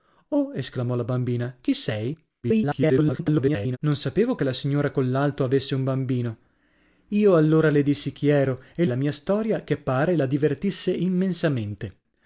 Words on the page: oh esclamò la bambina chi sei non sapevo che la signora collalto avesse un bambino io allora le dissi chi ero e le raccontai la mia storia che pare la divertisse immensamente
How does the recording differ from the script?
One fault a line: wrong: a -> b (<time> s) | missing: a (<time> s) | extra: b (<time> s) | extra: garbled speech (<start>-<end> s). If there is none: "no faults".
extra: garbled speech (2.4-3.8 s)
missing: le raccontai (8.8 s)